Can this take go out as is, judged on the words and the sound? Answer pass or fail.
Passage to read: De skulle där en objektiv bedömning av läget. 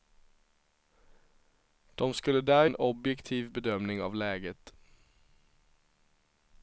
pass